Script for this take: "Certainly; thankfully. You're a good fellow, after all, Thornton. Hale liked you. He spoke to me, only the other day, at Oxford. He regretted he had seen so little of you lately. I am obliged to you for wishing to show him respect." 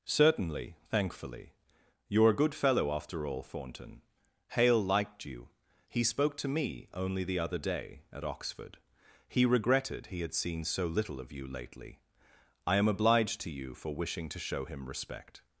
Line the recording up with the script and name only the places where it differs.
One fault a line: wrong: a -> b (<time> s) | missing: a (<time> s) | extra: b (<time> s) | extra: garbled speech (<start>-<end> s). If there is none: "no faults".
no faults